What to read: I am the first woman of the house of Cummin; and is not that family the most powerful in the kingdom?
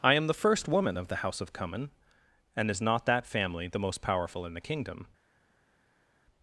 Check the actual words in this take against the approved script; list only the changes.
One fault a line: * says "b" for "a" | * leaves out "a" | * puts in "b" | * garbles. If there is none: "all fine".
all fine